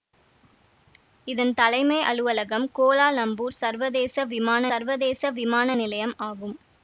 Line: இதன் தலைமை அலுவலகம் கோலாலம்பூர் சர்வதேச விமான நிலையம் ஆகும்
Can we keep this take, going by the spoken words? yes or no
no